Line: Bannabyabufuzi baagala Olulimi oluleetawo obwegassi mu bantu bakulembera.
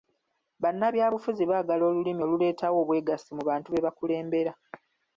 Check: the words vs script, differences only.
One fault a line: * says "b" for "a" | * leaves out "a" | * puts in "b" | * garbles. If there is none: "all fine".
* puts in "be"